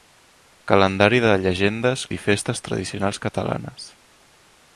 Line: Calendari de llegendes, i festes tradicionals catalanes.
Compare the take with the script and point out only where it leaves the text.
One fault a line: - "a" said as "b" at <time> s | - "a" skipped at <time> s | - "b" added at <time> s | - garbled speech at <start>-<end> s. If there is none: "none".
none